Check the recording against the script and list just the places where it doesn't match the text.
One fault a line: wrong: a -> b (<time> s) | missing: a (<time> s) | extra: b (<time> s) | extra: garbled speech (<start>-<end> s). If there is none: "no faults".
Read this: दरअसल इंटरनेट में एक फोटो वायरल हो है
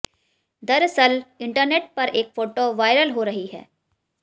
wrong: में -> पर (1.9 s)
extra: रही (3.2 s)